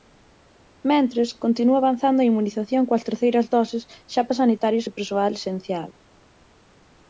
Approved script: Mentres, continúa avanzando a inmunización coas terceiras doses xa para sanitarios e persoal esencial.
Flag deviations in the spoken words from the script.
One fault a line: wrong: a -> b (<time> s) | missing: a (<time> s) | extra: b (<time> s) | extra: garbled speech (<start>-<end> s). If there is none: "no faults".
no faults